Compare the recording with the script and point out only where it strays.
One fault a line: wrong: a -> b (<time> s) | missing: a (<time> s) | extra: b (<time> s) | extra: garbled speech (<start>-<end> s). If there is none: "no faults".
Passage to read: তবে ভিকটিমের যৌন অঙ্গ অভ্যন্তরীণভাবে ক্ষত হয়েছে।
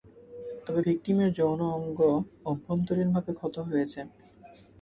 no faults